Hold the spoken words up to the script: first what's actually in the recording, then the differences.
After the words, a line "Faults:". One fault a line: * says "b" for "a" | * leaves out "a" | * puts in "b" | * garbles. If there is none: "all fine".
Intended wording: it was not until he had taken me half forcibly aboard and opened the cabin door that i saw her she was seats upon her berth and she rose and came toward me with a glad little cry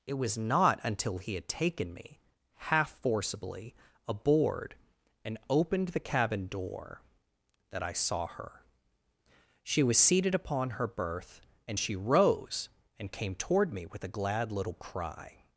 it was not until he had taken me half forcibly aboard and opened the cabin door that i saw her she was seated upon her berth and she rose and came toward me with a glad little cry
Faults:
* says "seated" for "seats"